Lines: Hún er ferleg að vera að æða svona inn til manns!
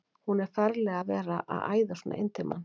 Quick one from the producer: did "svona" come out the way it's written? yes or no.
yes